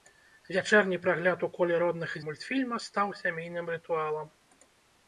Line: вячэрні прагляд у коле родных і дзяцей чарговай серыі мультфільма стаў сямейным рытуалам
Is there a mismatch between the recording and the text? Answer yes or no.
yes